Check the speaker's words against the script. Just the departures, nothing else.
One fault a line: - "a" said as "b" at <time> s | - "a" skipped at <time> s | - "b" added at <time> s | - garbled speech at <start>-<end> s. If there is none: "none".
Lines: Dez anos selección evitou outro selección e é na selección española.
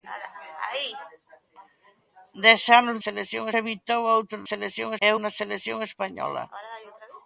none